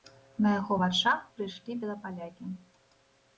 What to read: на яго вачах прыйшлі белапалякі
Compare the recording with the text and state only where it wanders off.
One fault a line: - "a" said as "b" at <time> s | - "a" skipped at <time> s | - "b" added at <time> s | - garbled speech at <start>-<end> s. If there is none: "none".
none